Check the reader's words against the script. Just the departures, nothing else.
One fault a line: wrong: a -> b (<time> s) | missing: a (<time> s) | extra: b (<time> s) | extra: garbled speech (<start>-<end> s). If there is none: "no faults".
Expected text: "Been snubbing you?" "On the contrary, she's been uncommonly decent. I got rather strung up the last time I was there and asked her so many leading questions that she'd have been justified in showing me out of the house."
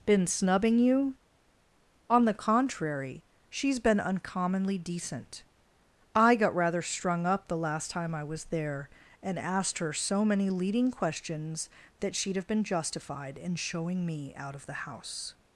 no faults